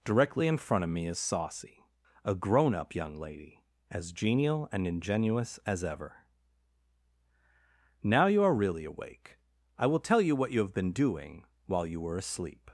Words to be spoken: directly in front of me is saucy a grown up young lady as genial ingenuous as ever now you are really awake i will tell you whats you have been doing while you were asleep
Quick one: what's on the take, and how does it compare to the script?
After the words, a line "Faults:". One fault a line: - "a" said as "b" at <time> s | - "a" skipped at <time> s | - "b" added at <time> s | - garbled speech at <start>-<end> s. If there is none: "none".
directly in front of me is saucy a grown up young lady as genial and ingenuous as ever now you are really awake i will tell you what you have been doing while you were asleep
Faults:
- "and" added at 4.7 s
- "whats" said as "what" at 10.4 s